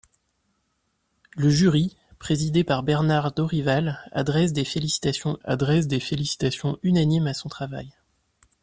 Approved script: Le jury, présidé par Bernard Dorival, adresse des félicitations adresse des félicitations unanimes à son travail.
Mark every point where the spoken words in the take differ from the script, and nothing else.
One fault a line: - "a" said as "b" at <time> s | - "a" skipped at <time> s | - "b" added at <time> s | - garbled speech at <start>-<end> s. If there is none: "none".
none